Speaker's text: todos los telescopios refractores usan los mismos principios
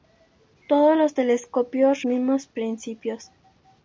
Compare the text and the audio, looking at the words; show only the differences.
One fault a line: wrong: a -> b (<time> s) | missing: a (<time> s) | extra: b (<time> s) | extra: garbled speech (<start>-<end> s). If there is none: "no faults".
missing: refractores usan los (2.0 s)